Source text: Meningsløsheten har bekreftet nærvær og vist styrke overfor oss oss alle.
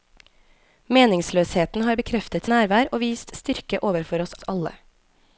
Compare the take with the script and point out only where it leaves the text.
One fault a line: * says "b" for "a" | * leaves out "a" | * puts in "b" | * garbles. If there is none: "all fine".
all fine